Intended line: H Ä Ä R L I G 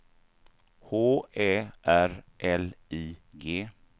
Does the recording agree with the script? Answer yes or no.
no